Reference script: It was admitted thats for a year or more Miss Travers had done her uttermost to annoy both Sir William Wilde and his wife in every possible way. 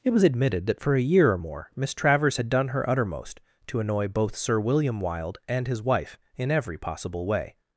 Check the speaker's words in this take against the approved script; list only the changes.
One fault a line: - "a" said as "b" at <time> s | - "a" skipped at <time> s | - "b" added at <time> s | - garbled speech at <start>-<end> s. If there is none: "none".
- "thats" said as "that" at 0.7 s